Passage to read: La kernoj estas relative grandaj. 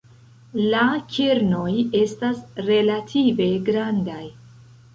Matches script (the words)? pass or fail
pass